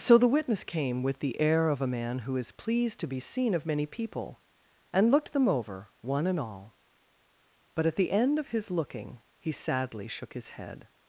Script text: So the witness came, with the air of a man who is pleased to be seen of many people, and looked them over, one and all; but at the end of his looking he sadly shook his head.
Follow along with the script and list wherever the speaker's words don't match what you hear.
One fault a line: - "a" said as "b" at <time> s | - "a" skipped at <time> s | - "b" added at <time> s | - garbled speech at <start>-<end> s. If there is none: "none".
none